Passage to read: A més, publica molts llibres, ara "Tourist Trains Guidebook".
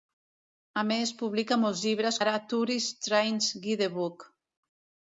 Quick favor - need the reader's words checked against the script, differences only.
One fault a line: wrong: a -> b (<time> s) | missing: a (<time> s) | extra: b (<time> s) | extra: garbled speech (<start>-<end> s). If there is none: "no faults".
no faults